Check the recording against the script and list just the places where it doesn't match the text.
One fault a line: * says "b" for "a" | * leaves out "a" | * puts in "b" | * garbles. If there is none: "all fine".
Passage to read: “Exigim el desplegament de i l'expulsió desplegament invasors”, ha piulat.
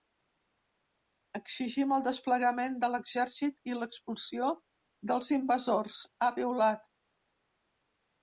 * puts in "l'exèrcit"
* says "dels" for "desplegament"